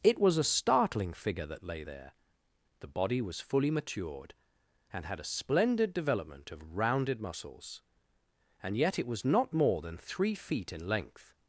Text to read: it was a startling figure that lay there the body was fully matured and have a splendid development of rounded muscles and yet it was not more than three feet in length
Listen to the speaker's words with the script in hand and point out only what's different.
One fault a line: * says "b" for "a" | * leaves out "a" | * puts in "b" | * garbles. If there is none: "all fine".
* says "had" for "have"